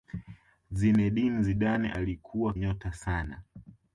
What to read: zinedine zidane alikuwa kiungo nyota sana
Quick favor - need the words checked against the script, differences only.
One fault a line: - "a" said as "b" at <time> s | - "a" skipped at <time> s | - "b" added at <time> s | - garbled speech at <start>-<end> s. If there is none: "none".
- "kiungo" skipped at 2.5 s